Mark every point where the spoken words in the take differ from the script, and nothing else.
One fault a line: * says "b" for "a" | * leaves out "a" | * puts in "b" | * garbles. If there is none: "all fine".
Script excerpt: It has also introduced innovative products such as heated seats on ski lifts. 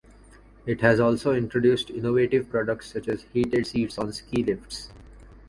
all fine